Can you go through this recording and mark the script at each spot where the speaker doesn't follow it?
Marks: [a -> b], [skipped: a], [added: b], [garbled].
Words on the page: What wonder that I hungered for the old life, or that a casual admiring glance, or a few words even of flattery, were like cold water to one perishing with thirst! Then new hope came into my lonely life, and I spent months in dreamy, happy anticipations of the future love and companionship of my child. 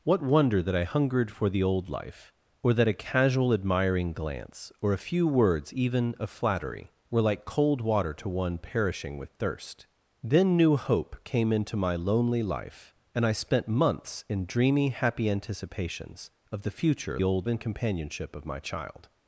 What wonder that I hungered for the old life, or that a casual admiring glance, or a few words even of flattery, were like cold water to one perishing with thirst! Then new hope came into my lonely life, and I spent months in dreamy, happy anticipations of the future [love -> old] and companionship of my child.